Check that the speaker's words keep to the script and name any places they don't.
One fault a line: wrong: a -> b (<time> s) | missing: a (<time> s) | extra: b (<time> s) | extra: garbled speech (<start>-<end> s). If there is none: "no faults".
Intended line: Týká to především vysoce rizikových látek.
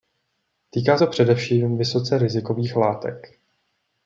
no faults